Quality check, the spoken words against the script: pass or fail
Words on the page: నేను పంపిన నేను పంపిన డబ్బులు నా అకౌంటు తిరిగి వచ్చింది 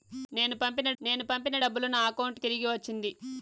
pass